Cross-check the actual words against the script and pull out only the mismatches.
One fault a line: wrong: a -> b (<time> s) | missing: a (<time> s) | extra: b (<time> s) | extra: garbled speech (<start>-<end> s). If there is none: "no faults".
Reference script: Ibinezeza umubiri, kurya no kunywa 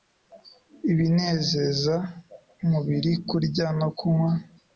no faults